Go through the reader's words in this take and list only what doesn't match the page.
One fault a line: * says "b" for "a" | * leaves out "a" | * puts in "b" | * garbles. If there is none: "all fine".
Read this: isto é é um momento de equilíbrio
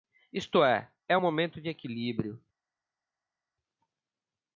all fine